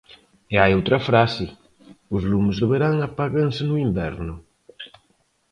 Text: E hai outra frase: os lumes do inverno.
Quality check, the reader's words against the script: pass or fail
fail